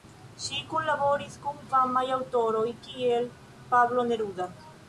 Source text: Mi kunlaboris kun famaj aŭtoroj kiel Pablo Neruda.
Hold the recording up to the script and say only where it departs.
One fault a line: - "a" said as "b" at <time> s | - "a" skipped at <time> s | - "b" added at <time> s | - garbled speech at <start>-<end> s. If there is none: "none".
- "Mi" said as "Ŝi" at 0.4 s